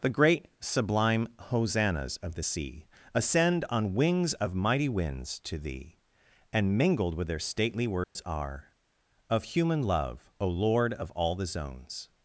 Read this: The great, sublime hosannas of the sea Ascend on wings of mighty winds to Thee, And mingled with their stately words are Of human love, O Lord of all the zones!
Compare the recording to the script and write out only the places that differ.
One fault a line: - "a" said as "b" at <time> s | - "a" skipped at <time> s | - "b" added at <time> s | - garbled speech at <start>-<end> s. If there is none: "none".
none